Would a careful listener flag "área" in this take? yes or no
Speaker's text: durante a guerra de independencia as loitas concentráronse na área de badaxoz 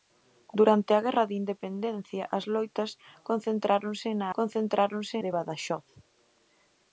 yes